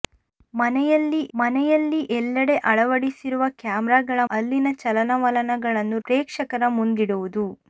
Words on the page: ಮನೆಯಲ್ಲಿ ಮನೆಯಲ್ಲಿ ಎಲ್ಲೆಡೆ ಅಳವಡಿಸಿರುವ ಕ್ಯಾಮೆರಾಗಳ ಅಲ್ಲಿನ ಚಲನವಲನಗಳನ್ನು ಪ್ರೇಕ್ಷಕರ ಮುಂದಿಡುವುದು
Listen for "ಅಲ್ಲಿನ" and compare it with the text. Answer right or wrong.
right